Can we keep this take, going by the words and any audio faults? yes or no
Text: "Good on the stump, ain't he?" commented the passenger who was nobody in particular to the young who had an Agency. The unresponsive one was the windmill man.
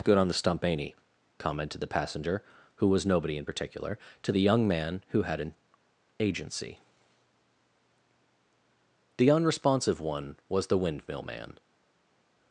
no